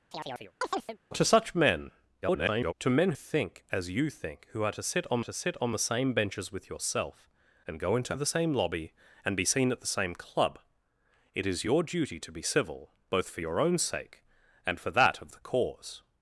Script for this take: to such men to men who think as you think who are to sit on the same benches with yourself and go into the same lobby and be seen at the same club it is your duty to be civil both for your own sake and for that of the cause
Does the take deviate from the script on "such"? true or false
false